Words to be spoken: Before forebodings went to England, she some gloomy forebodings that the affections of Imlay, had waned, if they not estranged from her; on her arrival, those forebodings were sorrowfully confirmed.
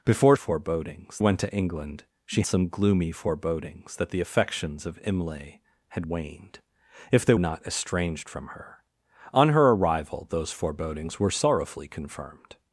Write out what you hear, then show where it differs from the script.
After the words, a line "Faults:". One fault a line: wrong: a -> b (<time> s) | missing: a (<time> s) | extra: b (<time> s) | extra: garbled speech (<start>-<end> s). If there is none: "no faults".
Before forebodings went to England, she some gloomy forebodings that the affections of Imlay, had waned, if they not estranged from her; on her arrival, those forebodings were sorrowfully confirmed.
Faults:
no faults